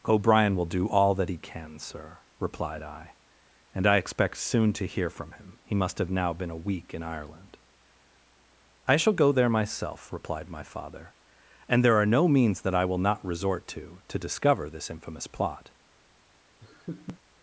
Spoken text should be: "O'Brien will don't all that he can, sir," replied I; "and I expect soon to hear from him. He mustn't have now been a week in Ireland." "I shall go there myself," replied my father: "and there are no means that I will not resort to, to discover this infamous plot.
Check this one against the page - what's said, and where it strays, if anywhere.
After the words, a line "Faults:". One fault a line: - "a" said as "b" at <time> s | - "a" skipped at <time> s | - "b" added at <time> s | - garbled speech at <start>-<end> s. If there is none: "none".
"O'Brien will do all that he can, sir," replied I; "and I expect soon to hear from him. He must have now been a week in Ireland." "I shall go there myself," replied my father: "and there are no means that I will not resort to, to discover this infamous plot.
Faults:
- "don't" said as "do" at 0.7 s
- "mustn't" said as "must" at 5.8 s